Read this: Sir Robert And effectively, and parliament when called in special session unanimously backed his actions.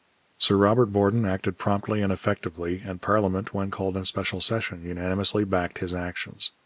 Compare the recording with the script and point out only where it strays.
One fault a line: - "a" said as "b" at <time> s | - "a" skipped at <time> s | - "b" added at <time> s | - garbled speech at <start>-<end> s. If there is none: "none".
- "Borden acted promptly" added at 0.9 s